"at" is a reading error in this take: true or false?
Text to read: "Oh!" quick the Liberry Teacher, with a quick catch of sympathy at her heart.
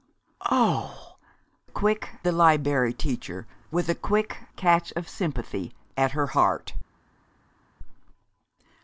false